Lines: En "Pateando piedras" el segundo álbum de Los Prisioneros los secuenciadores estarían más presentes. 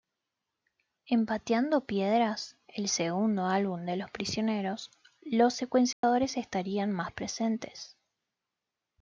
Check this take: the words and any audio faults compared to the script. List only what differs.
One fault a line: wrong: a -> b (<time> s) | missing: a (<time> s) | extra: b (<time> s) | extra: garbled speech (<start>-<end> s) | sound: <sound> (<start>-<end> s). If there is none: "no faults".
sound: dropout (5.9-6.0 s)